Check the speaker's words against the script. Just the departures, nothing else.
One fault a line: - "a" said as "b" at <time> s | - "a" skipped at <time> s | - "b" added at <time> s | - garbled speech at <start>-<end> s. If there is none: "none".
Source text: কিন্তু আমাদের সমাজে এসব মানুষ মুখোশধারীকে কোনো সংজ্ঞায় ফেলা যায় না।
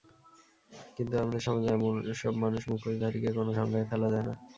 none